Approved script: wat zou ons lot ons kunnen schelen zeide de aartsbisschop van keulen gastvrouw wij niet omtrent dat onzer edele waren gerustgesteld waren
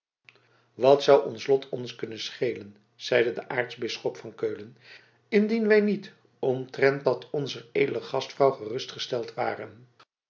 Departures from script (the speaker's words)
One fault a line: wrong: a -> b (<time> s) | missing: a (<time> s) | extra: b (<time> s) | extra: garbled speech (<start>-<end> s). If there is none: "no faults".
wrong: gastvrouw -> indien (5.3 s)
wrong: waren -> gastvrouw (8.0 s)